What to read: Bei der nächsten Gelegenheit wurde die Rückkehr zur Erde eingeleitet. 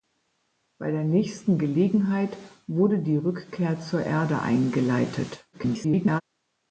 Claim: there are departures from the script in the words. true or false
true